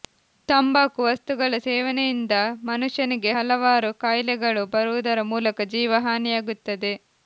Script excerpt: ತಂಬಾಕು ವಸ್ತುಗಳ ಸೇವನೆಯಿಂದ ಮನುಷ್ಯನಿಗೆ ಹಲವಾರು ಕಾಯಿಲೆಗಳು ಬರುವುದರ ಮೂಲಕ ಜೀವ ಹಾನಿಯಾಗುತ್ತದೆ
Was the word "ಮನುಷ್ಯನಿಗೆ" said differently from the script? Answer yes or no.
no